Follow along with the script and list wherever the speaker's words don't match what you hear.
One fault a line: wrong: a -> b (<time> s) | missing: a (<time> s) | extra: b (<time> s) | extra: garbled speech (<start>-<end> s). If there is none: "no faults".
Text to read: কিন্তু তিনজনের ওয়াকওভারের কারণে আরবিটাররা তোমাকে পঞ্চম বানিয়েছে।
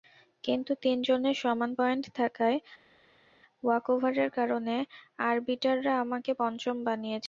extra: সমান পয়েন্ট থাকায় (1.4 s)
wrong: তোমাকে -> আমাকে (6.0 s)